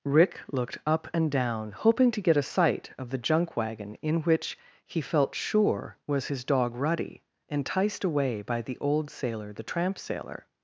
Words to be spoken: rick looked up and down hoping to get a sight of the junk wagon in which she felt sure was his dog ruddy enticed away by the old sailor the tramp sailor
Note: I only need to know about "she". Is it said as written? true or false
false